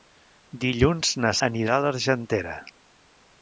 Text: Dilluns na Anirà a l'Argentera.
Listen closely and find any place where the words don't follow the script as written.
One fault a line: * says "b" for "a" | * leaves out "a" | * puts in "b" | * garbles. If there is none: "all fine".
all fine